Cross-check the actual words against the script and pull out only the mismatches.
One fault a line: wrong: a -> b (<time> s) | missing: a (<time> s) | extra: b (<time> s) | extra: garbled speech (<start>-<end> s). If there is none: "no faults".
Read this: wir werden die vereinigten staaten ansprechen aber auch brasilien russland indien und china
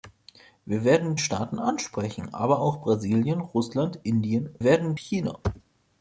missing: die vereinigten (1.1 s)
wrong: und -> werden (4.6 s)